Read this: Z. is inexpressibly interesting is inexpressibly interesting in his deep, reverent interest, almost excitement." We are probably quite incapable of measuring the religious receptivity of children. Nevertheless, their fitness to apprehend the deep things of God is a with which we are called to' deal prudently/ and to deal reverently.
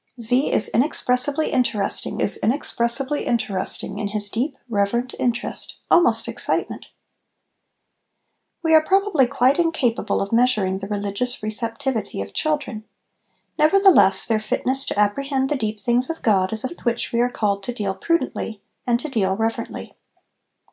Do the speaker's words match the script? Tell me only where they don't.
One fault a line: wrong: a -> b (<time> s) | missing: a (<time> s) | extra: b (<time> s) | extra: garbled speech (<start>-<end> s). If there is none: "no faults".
no faults